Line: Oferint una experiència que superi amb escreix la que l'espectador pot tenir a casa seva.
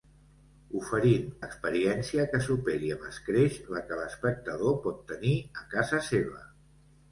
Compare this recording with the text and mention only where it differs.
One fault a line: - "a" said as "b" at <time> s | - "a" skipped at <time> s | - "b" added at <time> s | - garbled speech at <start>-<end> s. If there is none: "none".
- "una" skipped at 1.2 s